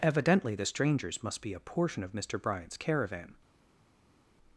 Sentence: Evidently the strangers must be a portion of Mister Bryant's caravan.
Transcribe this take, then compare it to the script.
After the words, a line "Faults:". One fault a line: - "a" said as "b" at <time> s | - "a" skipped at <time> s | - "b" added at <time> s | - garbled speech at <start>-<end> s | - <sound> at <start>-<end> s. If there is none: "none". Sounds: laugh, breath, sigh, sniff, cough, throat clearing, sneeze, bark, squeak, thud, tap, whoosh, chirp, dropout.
Evidently the strangers must be a portion of Mister Bryant's caravan.
Faults:
none